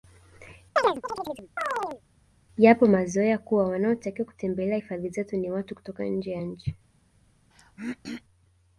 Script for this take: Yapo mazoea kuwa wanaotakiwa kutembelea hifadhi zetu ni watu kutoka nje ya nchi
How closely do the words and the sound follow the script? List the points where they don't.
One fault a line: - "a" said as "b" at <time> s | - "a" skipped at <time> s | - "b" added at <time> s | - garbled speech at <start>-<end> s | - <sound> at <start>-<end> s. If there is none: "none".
- chirp at 0.8-2.0 s
- throat clearing at 7.5-8.2 s